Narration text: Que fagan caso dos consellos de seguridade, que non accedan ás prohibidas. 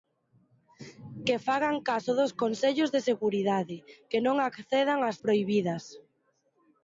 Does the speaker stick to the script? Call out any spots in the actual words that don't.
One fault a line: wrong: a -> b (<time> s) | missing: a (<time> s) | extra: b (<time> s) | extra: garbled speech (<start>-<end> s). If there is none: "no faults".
no faults